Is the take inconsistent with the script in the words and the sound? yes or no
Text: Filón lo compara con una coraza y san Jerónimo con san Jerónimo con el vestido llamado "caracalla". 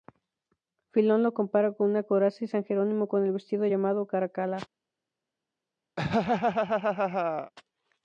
yes